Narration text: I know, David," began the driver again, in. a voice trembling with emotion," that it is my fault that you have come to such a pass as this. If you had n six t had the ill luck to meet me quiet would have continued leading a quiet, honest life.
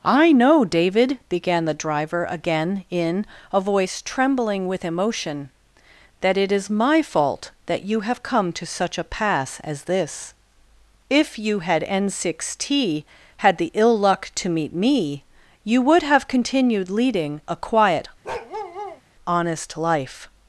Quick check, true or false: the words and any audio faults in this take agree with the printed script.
false